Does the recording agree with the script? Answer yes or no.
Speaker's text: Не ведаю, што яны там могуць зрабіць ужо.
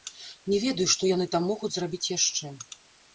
no